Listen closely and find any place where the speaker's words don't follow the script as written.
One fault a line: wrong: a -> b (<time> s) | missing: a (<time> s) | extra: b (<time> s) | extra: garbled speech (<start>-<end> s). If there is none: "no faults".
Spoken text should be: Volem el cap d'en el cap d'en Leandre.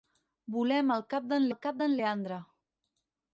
no faults